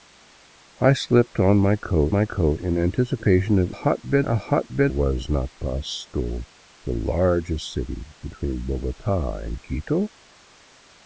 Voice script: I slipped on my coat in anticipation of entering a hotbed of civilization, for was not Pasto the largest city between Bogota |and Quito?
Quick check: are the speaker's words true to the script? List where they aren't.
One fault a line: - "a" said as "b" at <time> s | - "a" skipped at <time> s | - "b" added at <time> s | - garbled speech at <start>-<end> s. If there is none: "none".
- "my coat" added at 2.1 s
- "entering" said as "hotbed" at 3.7 s
- "of civilization for" skipped at 4.9 s